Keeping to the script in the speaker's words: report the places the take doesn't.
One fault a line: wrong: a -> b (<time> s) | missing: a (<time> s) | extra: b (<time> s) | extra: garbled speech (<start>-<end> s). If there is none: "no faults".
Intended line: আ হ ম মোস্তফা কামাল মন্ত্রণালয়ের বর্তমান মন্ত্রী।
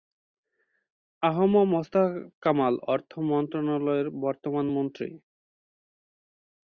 extra: অর্থ (2.9 s)